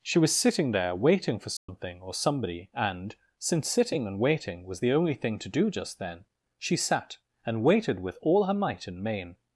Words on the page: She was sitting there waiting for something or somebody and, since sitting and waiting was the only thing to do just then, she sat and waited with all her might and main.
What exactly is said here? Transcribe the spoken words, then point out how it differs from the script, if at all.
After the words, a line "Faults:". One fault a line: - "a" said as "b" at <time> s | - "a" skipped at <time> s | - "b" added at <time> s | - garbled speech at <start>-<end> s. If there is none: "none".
She was sitting there waiting for something or somebody and, since sitting and waiting was the only thing to do just then, she sat and waited with all her might and main.
Faults:
none